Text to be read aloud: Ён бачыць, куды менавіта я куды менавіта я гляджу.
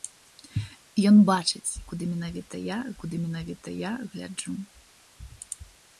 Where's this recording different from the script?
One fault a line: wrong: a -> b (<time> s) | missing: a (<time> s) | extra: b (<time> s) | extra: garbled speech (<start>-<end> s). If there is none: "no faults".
no faults